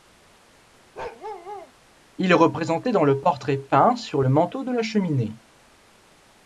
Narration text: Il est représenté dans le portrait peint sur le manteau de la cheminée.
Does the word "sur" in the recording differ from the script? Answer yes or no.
no